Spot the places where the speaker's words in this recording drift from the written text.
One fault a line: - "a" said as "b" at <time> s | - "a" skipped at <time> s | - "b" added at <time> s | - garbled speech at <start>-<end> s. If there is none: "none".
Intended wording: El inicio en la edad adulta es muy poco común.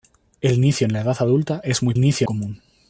- "poco" said as "inicio" at 1.9 s